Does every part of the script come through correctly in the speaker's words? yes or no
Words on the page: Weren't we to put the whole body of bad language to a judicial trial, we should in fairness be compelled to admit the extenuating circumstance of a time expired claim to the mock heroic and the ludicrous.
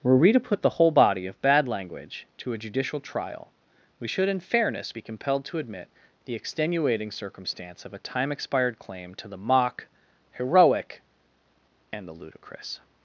no